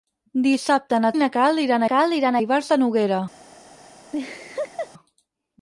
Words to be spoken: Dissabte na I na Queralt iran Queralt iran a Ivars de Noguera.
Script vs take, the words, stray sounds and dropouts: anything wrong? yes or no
yes